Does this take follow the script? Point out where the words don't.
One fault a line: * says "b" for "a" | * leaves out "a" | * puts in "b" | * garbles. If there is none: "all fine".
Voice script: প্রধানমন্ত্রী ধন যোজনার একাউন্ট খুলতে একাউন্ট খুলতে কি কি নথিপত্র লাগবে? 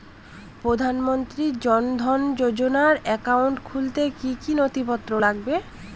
* puts in "জন"
* leaves out "একাউন্ট খুলতে"